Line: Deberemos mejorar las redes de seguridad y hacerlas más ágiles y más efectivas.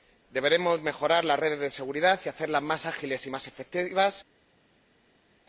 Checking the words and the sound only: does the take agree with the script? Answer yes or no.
yes